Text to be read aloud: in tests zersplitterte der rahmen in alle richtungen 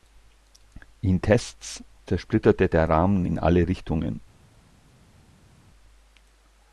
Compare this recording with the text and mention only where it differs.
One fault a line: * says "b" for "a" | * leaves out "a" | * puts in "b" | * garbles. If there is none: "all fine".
all fine